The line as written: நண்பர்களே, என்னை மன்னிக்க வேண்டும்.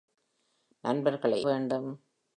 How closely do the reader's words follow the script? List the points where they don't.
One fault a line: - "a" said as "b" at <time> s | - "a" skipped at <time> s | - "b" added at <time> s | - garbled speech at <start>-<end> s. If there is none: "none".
- "என்னை மன்னிக்க" skipped at 1.5 s